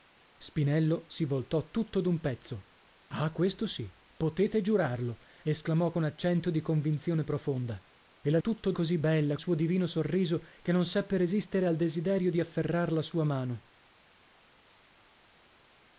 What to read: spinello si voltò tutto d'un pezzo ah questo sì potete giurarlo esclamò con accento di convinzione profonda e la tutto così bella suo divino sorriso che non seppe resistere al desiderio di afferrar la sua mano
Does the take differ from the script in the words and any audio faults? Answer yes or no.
no